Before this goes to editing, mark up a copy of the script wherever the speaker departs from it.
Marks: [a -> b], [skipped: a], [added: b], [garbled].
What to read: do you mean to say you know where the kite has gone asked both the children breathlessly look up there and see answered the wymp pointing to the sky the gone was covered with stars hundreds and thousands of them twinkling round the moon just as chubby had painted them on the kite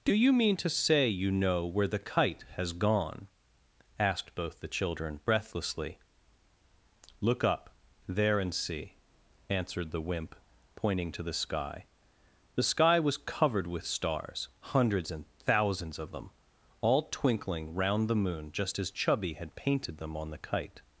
do you mean to say you know where the kite has gone asked both the children breathlessly look up there and see answered the wymp pointing to the sky the [gone -> sky] was covered with stars hundreds and thousands of them [added: all] twinkling round the moon just as chubby had painted them on the kite